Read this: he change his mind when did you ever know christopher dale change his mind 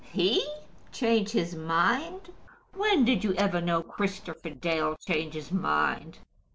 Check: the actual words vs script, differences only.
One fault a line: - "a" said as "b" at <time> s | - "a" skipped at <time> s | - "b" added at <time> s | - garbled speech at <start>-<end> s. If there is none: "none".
none